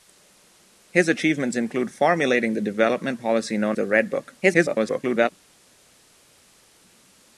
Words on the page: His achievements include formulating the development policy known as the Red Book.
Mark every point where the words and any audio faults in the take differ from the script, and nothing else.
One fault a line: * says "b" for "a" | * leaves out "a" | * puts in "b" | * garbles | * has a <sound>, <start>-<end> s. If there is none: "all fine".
* leaves out "as"
* garbles